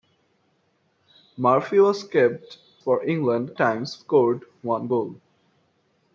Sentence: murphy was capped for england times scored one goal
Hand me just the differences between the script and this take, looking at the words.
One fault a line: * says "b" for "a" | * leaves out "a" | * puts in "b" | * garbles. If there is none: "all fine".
all fine